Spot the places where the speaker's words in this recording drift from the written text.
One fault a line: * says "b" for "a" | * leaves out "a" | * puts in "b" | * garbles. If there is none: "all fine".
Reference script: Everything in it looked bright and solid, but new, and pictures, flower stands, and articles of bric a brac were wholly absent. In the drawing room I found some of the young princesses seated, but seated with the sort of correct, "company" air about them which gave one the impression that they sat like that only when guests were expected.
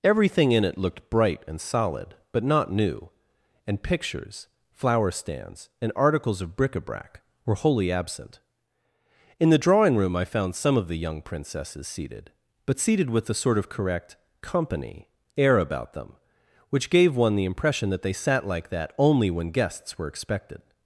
* puts in "not"